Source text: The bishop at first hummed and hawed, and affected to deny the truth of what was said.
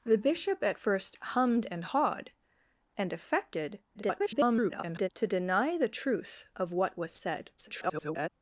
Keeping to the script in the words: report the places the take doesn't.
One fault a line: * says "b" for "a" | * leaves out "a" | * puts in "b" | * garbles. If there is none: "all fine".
* garbles
* garbles